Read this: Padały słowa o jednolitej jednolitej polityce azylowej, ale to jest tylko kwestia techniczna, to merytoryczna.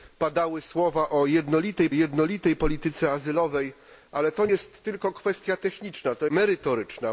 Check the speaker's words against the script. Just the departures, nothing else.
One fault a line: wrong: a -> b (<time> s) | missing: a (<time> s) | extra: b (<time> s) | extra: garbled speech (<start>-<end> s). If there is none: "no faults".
no faults